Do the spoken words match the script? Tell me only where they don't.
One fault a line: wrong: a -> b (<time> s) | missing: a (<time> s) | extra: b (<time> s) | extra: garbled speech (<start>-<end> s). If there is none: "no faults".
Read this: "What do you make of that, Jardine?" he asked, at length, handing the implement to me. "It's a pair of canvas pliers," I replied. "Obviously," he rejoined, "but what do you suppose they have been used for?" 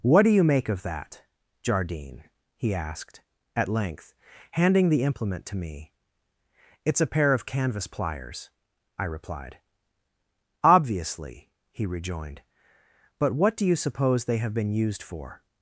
no faults